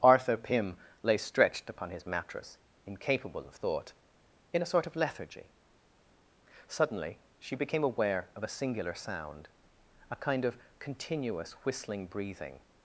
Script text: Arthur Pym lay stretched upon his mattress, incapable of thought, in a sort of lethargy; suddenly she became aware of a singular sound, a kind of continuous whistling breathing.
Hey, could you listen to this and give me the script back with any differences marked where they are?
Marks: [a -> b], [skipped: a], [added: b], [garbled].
Arthur Pym lay stretched upon his mattress, incapable of thought, in a sort of lethargy; suddenly she became aware of a singular sound, a kind of continuous whistling breathing.